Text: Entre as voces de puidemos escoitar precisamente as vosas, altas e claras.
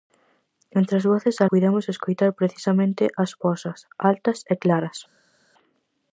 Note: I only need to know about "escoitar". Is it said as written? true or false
true